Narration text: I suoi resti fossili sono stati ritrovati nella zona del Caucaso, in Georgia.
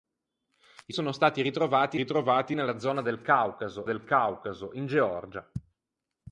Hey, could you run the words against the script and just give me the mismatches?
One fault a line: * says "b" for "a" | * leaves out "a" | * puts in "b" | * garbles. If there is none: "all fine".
* leaves out "suoi resti fossili"
* puts in "ritrovati"
* puts in "del Caucaso"